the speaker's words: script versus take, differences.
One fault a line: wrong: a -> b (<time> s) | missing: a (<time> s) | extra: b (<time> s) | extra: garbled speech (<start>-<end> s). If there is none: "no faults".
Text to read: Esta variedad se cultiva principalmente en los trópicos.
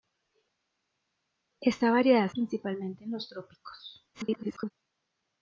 missing: se cultiva (2.3 s)
extra: garbled speech (4.1-4.7 s)